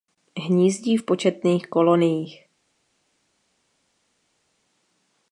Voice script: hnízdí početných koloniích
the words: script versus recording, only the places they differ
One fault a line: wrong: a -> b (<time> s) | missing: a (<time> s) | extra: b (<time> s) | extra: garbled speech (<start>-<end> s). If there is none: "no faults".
extra: v (1.0 s)